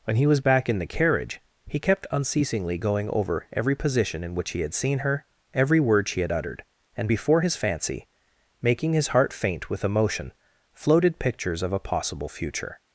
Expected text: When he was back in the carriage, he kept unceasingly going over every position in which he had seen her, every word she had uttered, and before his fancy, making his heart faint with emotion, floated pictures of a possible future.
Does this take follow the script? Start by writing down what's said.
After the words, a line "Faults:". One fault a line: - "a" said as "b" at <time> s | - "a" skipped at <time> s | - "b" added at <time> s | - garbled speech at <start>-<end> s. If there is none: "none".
When he was back in the carriage, he kept unceasingly going over every position in which he had seen her, every word she had uttered, and before his fancy, making his heart faint with emotion, floated pictures of a possible future.
Faults:
none